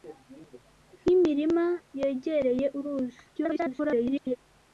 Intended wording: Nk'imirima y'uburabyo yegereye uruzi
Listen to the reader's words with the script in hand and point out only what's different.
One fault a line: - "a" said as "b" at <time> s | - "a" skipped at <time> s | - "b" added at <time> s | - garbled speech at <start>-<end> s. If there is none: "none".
- "y'uburabyo" skipped at 1.6 s
- garbled speech at 3.3-4.4 s